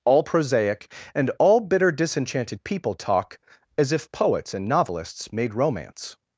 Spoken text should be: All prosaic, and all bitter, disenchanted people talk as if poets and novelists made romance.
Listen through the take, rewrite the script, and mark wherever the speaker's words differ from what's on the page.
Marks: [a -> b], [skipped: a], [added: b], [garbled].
All prosaic, and all bitter, disenchanted people talk as if poets and novelists made romance.